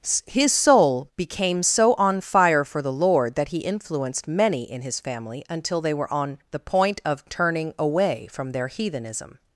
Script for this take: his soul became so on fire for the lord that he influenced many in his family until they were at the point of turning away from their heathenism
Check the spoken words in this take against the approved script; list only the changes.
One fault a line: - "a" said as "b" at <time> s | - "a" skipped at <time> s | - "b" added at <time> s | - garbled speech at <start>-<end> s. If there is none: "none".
- "at" said as "on" at 6.1 s